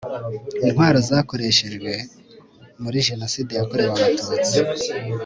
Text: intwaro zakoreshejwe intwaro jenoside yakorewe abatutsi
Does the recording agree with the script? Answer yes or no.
no